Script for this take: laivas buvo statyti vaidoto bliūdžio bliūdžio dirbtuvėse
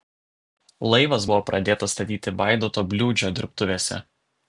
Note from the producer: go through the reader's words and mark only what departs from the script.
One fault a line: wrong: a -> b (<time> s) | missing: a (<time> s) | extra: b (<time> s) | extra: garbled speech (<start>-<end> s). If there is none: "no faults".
extra: pradėtas (1.5 s)
missing: bliūdžio (3.4 s)